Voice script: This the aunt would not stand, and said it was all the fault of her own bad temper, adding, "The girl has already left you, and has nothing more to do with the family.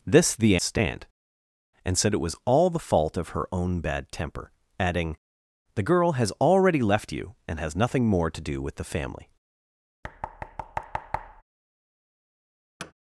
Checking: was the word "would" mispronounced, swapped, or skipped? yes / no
yes